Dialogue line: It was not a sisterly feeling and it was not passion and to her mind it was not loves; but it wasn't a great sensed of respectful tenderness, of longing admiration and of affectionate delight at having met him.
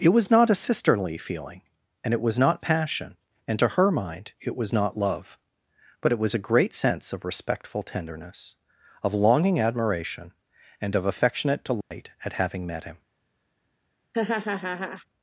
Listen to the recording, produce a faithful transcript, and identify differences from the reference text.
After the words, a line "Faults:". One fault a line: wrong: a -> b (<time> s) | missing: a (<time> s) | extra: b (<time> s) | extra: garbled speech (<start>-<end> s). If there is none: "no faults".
It was not a sisterly feeling and it was not passion and to her mind it was not love; but it was a great sense of respectful tenderness, of longing admiration and of affectionate delight at having met him.
Faults:
wrong: loves -> love (5.0 s)
wrong: wasn't -> was (6.2 s)
wrong: sensed -> sense (6.7 s)